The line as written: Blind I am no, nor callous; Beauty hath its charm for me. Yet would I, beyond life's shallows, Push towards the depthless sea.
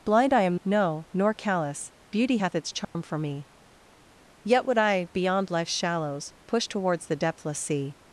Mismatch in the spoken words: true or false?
false